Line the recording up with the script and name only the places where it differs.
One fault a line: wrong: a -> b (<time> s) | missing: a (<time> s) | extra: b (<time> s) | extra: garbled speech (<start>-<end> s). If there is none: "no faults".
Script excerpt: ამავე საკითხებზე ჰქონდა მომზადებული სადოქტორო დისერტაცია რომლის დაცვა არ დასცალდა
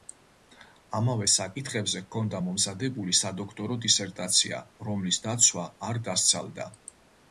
no faults